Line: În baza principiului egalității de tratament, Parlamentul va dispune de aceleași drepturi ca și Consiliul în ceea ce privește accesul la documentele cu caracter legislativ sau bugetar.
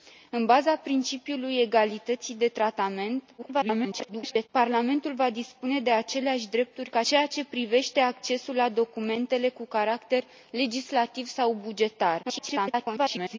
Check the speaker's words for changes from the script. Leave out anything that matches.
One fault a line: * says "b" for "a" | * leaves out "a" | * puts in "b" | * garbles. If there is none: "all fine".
* garbles
* leaves out "și Consiliul în"
* garbles